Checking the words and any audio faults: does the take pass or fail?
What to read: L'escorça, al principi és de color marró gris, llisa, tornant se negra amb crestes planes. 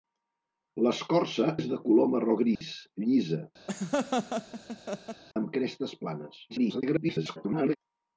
fail